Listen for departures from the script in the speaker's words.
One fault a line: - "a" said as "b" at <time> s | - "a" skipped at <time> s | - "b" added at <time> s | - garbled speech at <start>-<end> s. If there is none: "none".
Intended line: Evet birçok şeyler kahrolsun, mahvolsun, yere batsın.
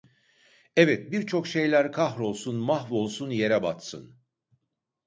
none